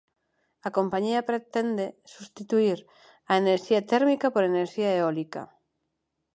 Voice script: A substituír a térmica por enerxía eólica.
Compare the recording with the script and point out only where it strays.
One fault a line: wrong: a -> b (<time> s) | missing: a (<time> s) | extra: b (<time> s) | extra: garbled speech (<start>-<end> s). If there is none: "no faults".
extra: compañía pretende (0.8 s)
extra: enerxía (3.4 s)